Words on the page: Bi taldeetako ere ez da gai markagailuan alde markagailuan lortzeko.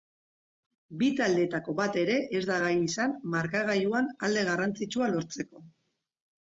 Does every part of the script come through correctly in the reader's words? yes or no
no